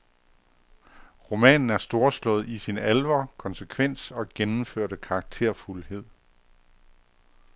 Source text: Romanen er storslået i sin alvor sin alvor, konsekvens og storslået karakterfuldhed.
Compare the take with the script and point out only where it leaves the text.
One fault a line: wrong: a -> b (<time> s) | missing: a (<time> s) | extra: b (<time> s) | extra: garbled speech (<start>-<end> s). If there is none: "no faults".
missing: sin alvor (3.3 s)
wrong: storslået -> gennemførte (4.3 s)